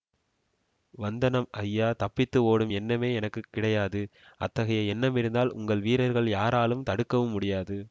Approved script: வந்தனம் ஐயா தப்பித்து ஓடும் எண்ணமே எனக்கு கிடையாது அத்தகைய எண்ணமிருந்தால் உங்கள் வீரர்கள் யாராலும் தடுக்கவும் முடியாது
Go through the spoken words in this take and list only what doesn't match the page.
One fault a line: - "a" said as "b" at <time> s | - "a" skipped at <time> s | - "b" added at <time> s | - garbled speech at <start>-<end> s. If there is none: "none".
none